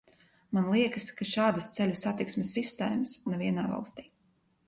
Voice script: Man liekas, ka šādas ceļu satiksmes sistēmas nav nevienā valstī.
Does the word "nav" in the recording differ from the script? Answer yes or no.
yes